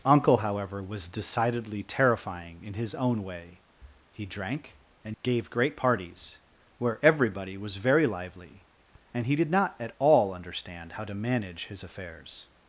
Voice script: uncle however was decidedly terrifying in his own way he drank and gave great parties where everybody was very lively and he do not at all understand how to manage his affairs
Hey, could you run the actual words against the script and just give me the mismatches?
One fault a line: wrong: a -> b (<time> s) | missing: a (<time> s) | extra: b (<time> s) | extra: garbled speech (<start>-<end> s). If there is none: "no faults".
wrong: do -> did (9.4 s)